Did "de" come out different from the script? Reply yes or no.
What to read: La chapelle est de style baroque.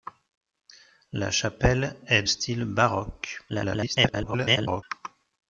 yes